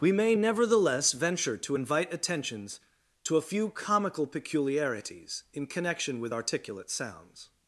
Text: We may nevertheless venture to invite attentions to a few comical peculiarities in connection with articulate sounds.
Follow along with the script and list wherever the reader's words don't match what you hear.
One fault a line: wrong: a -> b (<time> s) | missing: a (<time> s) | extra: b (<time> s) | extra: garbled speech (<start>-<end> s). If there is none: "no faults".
no faults